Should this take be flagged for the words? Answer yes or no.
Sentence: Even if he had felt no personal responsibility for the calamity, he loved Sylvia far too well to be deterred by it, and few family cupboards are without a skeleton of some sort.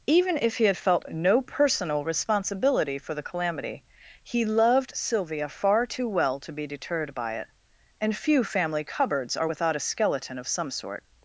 no